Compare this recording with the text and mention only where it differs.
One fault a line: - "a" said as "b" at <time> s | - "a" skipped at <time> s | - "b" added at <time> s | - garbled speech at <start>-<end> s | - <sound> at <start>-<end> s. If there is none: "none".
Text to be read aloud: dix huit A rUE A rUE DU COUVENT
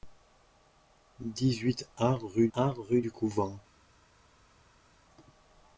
none